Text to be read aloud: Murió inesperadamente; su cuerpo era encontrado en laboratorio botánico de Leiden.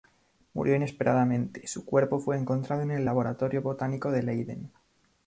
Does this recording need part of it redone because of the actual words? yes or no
yes